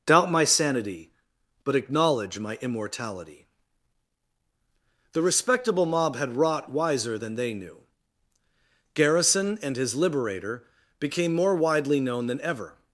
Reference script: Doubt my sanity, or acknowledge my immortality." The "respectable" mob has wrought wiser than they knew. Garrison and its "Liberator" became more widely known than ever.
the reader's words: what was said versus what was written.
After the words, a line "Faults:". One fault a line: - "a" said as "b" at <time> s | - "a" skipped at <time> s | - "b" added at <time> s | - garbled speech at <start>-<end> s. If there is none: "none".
Doubt my sanity, but acknowledge my immortality." The "respectable" mob had wrought wiser than they knew. Garrison and his "Liberator" became more widely known than ever.
Faults:
- "or" said as "but" at 1.6 s
- "has" said as "had" at 6.2 s
- "its" said as "his" at 9.8 s